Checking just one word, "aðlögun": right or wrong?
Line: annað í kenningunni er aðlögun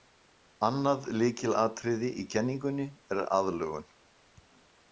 right